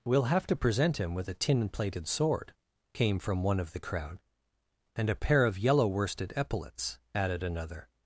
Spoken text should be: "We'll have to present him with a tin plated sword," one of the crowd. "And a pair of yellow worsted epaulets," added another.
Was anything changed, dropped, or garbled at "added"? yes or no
no